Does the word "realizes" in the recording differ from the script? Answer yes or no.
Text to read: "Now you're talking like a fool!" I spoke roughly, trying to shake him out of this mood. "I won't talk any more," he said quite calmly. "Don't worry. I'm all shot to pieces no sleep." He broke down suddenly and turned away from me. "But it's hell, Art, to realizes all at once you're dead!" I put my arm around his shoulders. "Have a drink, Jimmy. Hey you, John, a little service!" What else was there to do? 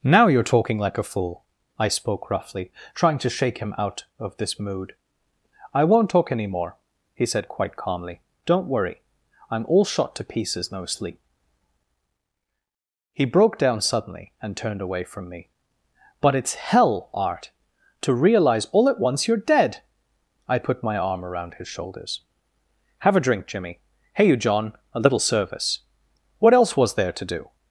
yes